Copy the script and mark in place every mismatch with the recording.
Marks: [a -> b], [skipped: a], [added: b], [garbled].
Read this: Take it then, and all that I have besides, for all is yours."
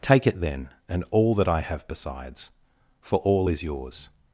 Take it then, and all that I have besides, for all is yours."